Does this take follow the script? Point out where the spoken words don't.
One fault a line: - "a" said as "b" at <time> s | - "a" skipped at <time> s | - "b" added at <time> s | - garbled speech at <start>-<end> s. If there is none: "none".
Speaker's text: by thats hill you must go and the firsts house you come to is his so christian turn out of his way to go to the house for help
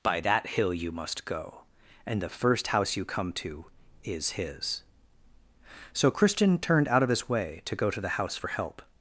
- "thats" said as "that" at 0.2 s
- "firsts" said as "first" at 2.3 s
- "turn" said as "turned" at 6.6 s